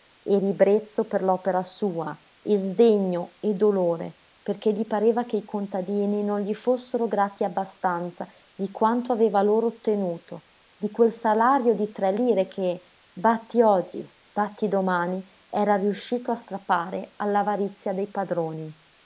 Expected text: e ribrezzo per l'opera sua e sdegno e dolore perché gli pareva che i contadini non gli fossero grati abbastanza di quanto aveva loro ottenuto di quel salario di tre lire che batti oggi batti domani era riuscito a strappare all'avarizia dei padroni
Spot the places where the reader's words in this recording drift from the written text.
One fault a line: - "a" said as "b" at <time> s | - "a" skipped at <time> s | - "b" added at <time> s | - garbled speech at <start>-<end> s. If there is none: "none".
none